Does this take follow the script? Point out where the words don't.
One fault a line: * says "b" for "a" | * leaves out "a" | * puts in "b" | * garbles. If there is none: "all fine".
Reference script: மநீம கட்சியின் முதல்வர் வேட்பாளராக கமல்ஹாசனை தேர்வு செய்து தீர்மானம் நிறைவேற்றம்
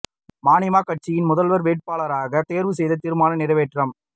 * leaves out "கமல்ஹாசனை"